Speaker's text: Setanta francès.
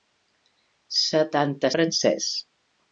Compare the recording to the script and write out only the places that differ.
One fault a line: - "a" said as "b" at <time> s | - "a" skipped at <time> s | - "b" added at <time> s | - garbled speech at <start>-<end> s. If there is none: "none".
none